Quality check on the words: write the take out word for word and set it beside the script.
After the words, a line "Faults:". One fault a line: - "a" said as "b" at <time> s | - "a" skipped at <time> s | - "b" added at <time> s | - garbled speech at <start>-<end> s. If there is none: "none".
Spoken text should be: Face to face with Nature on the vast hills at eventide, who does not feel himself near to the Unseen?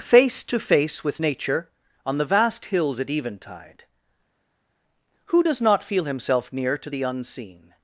Face to face with Nature on the vast hills at eventide, who does not feel himself near to the Unseen?
Faults:
none